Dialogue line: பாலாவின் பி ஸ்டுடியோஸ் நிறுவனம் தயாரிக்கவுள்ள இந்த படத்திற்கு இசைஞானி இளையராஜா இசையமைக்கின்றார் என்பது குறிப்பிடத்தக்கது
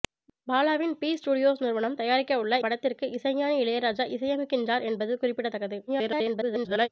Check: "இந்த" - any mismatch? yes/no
yes